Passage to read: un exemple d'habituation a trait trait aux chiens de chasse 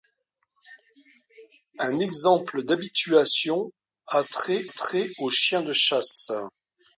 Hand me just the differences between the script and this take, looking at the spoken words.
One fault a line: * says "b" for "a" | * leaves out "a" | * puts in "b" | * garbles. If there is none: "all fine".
all fine